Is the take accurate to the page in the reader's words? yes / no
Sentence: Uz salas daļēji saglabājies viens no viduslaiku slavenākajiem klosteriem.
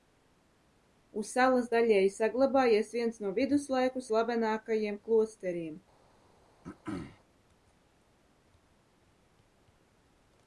yes